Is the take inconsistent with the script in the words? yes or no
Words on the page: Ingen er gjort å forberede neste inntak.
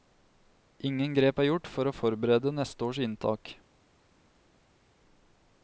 yes